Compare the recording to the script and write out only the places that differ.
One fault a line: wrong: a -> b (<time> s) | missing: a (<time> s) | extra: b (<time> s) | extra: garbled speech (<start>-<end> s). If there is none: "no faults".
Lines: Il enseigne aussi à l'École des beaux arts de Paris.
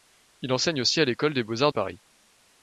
missing: de (1.7 s)